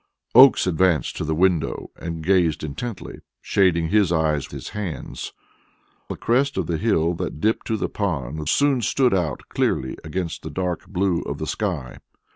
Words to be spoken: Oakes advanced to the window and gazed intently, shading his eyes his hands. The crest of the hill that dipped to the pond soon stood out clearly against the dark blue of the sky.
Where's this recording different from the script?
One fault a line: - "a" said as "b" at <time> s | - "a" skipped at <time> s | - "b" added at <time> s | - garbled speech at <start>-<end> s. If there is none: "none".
none